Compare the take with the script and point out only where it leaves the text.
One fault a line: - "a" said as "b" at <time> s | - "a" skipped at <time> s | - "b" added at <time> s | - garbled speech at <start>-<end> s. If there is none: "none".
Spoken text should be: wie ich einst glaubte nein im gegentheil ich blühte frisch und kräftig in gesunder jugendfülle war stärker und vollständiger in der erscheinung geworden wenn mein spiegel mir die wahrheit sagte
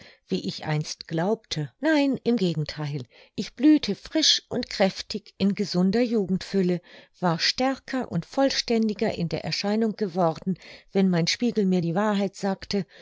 none